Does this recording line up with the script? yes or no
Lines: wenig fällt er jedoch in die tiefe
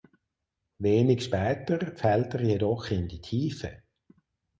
no